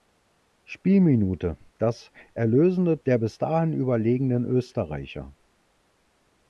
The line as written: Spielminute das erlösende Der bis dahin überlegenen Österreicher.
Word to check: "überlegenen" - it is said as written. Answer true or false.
true